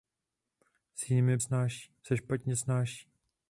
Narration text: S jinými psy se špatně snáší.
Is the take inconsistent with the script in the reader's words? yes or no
yes